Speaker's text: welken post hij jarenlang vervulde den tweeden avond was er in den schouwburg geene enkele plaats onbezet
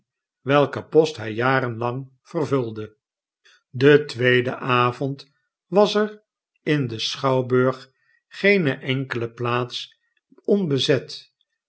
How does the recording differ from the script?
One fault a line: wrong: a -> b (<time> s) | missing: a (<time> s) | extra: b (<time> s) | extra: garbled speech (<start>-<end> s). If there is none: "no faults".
no faults